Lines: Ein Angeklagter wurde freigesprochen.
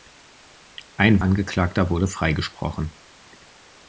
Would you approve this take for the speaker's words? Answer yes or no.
yes